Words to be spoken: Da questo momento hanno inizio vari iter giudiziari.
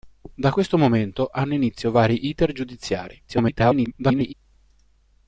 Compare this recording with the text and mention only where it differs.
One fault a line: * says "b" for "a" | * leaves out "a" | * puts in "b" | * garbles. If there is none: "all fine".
* garbles